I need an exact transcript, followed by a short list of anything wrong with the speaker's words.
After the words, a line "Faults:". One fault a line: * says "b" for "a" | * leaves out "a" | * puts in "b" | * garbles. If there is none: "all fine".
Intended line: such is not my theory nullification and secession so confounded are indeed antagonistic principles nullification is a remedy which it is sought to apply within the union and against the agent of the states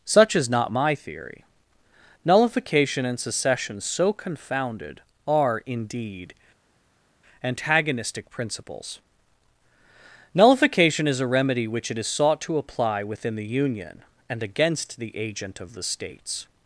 such is not my theory nullification and secession so confounded are indeed antagonistic principles nullification is a remedy which it is sought to apply within the union and against the agent of the states
Faults:
all fine